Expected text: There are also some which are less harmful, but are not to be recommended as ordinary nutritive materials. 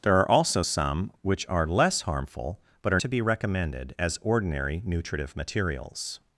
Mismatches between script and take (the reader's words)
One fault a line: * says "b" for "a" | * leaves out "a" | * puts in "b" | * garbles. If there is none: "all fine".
* leaves out "not"